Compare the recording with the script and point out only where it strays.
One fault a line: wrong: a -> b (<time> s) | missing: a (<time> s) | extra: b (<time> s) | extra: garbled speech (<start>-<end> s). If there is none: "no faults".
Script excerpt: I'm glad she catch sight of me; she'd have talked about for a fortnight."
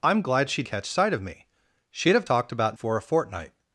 no faults